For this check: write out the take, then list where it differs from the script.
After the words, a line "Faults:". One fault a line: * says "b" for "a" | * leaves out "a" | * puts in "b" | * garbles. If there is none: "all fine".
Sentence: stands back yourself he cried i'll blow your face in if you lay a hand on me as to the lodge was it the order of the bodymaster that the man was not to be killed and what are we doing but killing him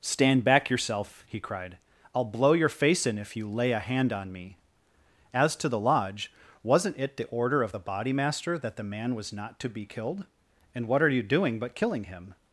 stand back yourself he cried i'll blow your face in if you lay a hand on me as to the lodge wasn't it the order of the bodymaster that the man was not to be killed and what are you doing but killing him
Faults:
* says "stand" for "stands"
* says "wasn't" for "was"
* says "you" for "we"